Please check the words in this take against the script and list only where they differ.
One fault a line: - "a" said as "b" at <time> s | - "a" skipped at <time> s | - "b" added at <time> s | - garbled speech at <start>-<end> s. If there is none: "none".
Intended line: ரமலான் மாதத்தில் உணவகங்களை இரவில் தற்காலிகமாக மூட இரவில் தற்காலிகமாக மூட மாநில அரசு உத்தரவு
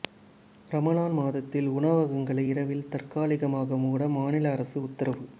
- "இரவில் தற்காலிகமாக மூட" skipped at 4.1 s